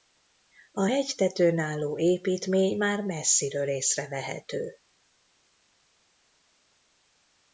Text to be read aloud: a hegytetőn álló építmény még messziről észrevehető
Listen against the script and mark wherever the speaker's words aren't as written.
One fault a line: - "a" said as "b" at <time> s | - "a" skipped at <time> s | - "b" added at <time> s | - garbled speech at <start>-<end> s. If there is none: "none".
- "még" said as "már" at 2.8 s